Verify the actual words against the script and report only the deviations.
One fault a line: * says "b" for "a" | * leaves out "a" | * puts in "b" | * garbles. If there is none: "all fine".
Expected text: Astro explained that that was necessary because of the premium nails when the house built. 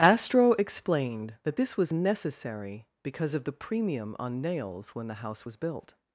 * says "this" for "that"
* puts in "on"
* puts in "was"